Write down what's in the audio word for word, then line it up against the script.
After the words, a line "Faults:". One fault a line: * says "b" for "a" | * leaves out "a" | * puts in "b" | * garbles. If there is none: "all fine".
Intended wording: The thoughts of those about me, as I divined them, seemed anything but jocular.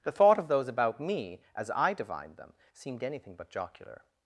The thought of those about me, as I divined them, seemed anything but jocular.
Faults:
* says "thought" for "thoughts"